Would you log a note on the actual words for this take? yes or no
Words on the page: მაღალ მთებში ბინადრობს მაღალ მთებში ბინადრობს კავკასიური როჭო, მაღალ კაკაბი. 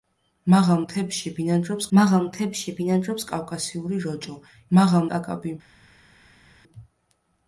no